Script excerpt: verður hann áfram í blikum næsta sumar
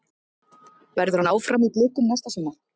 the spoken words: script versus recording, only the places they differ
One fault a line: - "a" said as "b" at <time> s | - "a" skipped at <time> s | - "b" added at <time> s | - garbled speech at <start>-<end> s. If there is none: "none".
none